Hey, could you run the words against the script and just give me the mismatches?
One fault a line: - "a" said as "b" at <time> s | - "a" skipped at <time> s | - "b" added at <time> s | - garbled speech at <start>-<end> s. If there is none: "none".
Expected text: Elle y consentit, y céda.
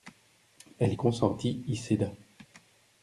none